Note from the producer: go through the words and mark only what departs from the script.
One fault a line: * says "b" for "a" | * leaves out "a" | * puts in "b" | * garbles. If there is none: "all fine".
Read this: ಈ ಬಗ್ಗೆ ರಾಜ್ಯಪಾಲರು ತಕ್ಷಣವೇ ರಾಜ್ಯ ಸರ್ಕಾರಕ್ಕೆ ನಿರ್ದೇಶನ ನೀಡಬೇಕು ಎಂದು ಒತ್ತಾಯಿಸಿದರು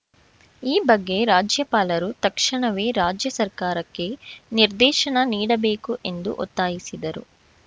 all fine